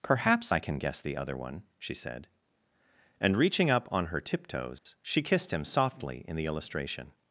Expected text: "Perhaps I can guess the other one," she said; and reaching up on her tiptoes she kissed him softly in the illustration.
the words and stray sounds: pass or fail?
fail